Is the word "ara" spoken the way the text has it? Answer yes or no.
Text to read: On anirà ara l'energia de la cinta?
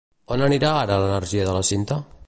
yes